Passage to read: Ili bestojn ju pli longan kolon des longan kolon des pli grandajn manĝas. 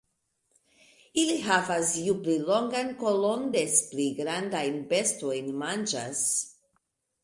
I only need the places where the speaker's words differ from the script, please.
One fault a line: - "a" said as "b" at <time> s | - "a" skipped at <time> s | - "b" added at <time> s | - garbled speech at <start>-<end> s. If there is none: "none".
- "bestojn" said as "havas" at 1.5 s
- "longan kolon des" skipped at 3.8 s
- "bestojn" added at 4.9 s